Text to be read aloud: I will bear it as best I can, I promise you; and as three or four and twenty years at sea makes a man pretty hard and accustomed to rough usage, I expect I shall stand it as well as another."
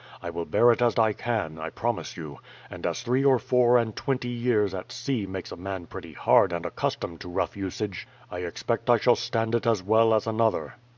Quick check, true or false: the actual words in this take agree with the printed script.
false